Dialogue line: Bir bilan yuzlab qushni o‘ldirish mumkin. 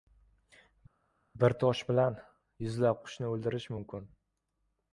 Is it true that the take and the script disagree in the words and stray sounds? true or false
true